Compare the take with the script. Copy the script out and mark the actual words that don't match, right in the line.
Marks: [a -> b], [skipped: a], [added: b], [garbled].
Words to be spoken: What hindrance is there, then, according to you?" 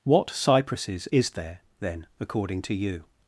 What [hindrance -> cypresses] is there, then, according to you?"